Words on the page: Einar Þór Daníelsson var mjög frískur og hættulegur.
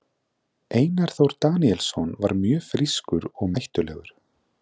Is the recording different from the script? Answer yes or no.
no